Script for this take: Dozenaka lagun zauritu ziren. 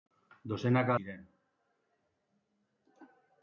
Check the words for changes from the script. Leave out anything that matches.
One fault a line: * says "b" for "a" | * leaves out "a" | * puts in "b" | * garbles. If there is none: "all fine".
* leaves out "lagun zauritu"